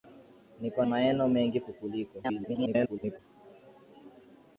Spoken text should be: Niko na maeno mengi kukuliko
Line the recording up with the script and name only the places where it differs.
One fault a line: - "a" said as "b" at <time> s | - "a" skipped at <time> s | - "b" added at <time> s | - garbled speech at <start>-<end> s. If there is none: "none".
- "na" skipped at 0.8 s
- garbled speech at 2.2-3.2 s